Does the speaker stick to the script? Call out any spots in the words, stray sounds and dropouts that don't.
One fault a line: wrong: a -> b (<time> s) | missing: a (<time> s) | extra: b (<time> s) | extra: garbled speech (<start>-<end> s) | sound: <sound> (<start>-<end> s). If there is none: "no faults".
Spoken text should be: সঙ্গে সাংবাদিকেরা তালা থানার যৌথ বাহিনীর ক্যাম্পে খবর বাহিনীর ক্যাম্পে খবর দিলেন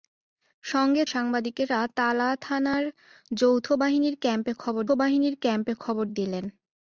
no faults